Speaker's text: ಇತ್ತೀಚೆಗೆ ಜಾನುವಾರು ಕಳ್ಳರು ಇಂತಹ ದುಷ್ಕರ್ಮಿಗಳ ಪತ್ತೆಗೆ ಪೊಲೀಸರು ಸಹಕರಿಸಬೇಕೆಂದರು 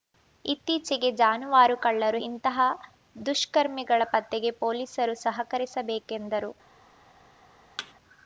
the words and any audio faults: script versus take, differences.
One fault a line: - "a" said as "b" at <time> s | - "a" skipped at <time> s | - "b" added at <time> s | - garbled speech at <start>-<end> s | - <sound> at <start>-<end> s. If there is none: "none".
- thud at 7.8-7.9 s